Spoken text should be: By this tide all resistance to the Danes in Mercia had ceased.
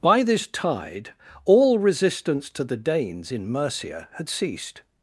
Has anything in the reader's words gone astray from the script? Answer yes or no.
no